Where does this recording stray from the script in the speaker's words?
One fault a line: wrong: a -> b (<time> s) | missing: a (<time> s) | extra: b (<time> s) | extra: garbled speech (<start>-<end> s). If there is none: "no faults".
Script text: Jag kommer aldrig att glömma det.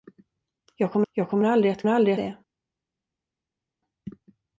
extra: jag kommer (1.1 s)
wrong: glömma -> aldrig (1.9 s)